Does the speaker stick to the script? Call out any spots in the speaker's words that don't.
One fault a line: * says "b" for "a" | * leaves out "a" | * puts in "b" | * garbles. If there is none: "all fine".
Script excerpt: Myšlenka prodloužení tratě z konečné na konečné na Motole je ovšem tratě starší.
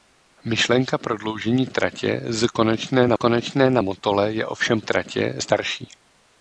all fine